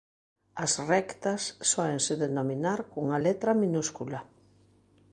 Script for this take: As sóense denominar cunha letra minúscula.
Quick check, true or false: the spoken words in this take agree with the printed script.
false